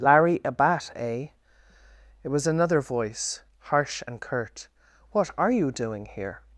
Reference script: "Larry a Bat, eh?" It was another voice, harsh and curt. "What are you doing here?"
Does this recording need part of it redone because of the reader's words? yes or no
no